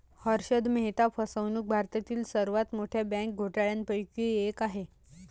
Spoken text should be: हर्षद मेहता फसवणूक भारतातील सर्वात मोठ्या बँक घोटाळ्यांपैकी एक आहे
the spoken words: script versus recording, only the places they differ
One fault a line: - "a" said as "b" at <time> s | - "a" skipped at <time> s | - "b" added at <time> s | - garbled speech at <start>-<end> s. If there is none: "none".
none